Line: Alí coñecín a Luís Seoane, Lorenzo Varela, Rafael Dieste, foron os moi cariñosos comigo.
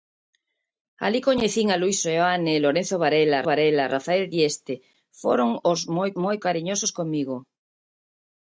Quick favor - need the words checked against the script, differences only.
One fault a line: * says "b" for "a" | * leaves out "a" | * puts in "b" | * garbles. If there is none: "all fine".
* puts in "Varela"
* puts in "moi"